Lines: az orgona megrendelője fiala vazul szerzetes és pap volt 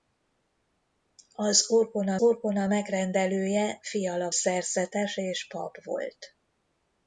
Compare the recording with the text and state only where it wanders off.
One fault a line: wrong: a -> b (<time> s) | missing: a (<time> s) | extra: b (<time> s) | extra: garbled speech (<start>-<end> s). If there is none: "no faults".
extra: orgona (2.2 s)
missing: vazul (4.3 s)